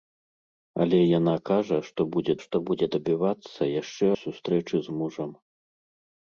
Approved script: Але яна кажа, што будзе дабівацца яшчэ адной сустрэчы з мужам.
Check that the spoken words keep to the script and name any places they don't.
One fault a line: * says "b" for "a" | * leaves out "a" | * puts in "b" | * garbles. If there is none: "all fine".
* puts in "што будзе"
* leaves out "адной"